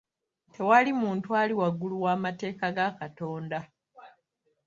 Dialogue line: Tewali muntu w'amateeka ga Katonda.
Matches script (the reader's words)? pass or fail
fail